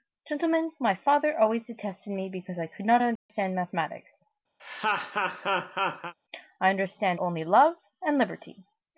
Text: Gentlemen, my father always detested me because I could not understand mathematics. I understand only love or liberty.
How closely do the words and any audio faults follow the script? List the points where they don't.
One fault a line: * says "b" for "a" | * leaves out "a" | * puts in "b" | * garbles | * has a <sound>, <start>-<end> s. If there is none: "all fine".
* has a dropout, 3.2-3.3 s
* has a laugh, 4.6-6.1 s
* says "and" for "or"